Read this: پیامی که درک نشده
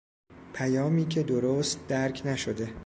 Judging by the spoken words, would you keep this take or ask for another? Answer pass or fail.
fail